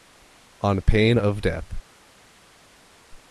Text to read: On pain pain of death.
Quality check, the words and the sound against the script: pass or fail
fail